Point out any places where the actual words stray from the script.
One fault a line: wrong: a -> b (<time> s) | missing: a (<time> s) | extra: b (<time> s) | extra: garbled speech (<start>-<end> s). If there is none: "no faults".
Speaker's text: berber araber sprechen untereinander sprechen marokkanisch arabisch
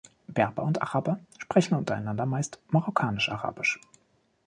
extra: und (0.6 s)
wrong: sprechen -> meist (2.2 s)